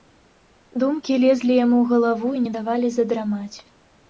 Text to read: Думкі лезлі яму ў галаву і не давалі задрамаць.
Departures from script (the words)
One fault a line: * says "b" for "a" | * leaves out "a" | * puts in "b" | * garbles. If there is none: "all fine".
all fine